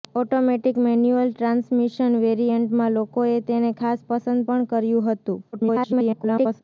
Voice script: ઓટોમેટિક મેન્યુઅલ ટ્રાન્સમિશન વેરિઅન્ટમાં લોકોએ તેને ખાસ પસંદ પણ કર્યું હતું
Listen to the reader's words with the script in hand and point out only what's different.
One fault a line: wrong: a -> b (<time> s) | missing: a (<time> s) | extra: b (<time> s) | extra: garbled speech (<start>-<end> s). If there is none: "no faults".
extra: garbled speech (5.5-6.6 s)